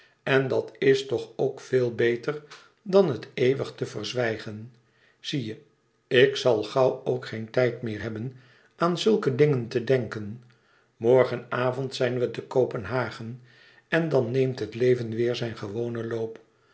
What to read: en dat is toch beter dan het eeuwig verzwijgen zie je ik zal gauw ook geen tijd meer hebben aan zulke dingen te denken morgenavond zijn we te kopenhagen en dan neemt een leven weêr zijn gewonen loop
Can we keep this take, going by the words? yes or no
no